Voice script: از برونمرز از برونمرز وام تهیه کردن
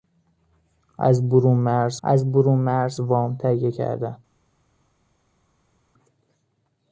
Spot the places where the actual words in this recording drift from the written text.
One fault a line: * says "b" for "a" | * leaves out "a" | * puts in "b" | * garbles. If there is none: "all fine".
all fine